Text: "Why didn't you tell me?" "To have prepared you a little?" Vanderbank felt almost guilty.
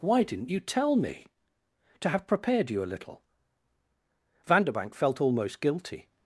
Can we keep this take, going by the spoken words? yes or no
yes